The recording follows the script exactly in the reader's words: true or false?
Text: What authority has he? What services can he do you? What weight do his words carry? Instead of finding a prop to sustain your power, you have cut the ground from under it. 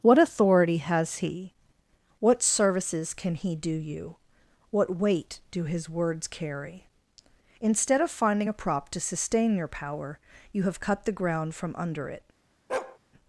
true